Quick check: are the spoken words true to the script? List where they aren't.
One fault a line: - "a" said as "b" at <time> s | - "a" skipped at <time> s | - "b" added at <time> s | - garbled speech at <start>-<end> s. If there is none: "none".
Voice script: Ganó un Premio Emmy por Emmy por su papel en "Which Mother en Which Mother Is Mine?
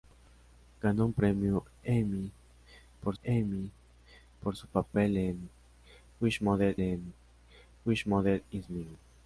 none